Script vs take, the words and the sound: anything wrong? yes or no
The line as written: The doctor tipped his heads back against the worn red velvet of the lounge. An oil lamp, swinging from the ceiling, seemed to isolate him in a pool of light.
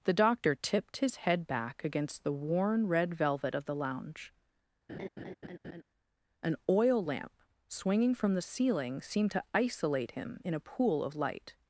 yes